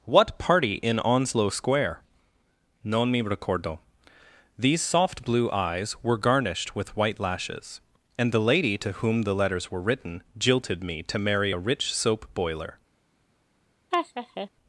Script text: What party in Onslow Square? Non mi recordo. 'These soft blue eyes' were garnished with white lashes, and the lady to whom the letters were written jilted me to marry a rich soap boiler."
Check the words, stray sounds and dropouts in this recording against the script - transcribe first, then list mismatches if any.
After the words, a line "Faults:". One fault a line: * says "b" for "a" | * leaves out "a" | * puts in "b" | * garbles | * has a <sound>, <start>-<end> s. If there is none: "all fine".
What party in Onslow Square? Non mi recordo. 'These soft blue eyes' were garnished with white lashes, and the lady to whom the letters were written jilted me to marry a rich soap boiler."
Faults:
* has a laugh, 13.9-14.5 s